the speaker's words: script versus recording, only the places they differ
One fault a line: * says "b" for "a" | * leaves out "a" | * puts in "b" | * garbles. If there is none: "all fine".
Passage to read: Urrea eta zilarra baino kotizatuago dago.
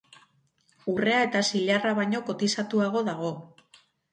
all fine